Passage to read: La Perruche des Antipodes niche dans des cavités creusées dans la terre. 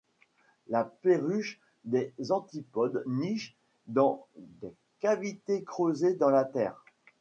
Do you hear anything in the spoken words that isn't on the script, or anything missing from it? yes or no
no